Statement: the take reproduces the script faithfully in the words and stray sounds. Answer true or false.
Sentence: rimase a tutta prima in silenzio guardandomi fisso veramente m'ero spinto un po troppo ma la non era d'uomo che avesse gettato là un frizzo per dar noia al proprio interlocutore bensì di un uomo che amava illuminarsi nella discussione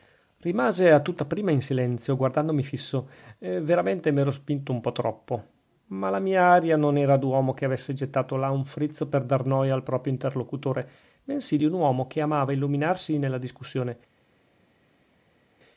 false